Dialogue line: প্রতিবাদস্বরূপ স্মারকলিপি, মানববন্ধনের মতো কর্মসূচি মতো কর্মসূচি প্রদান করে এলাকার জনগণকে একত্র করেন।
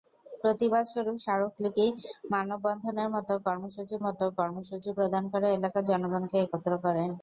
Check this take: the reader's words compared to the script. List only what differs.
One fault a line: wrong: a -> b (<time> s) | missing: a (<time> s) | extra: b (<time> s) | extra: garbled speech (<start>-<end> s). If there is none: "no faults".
no faults